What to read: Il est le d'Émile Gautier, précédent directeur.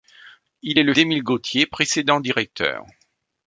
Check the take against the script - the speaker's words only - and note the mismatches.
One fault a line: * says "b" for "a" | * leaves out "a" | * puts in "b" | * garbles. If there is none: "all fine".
all fine